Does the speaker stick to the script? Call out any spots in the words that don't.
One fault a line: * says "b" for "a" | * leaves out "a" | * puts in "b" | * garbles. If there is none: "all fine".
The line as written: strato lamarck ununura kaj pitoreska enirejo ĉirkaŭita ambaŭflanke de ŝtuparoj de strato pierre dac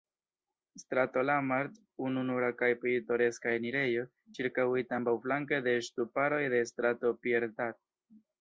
all fine